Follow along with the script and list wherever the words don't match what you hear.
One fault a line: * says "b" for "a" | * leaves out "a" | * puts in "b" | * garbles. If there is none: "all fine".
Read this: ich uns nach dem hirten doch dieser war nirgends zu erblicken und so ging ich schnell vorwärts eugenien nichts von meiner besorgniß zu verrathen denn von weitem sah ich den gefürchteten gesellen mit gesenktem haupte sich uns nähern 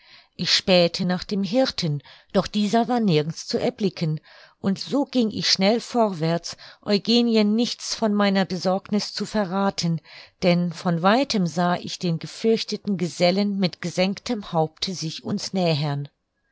* says "spähte" for "uns"